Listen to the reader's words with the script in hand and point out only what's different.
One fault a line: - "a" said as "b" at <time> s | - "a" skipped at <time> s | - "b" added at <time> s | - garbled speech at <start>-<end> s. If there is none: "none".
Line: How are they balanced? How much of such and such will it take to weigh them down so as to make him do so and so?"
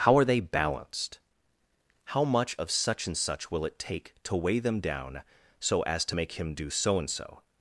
none